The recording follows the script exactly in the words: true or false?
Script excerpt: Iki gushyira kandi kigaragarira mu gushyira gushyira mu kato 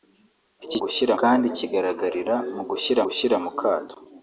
true